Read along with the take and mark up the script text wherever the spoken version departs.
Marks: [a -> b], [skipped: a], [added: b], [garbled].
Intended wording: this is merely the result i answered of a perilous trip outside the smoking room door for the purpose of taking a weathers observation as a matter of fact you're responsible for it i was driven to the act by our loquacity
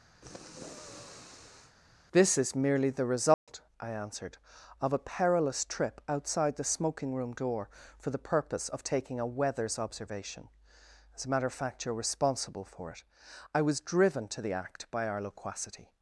this is merely the result i answered of a perilous trip outside the smoking room door for the purpose of taking a weathers observation as a matter of fact you're responsible for it i was driven to the act by our loquacity